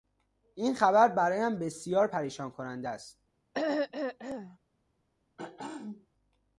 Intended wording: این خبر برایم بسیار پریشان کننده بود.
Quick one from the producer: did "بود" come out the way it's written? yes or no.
no